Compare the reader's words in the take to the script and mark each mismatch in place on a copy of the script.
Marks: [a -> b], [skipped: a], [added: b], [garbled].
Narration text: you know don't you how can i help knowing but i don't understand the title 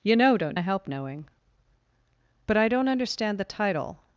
you know don't [skipped: you how can] i help knowing but i don't understand the title